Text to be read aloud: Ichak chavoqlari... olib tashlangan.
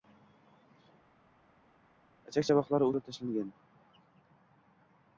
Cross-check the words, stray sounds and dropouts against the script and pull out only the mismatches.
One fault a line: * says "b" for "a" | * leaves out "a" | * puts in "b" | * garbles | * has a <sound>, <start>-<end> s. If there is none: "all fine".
all fine